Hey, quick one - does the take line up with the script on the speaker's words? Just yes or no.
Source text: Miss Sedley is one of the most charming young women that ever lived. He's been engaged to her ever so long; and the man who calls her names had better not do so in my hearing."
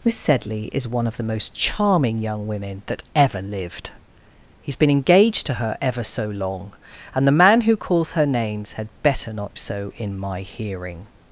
no